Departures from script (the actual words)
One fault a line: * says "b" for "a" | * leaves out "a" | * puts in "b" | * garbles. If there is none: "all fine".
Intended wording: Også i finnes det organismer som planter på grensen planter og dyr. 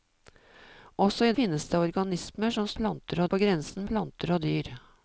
all fine